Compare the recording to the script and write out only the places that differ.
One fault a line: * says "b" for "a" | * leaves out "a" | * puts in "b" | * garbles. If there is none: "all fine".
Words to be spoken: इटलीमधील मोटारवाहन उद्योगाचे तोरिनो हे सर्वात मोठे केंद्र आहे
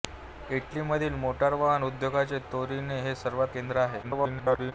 * leaves out "मोठे"
* garbles